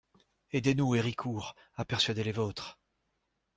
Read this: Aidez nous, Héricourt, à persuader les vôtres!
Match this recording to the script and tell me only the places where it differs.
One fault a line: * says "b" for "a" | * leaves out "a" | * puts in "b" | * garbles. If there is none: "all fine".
all fine